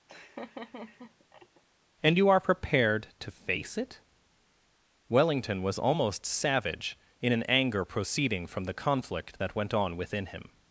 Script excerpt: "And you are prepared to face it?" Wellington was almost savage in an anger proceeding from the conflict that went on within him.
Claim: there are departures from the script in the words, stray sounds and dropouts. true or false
true